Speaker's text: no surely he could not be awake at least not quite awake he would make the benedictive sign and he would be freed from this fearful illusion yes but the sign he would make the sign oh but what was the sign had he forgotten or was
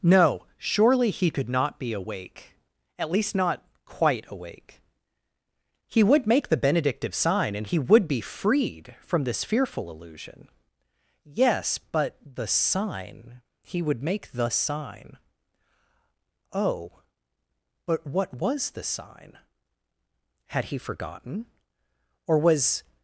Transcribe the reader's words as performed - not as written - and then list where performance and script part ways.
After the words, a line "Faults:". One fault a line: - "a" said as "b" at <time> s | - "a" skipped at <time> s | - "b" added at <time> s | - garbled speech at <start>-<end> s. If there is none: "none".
no surely he could not be awake at least not quite awake he would make the benedictive sign and he would be freed from this fearful illusion yes but the sign he would make the sign oh but what was the sign had he forgotten or was
Faults:
none